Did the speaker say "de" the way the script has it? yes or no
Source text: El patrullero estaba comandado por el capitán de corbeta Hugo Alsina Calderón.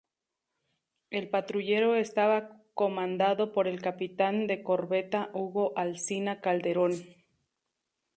yes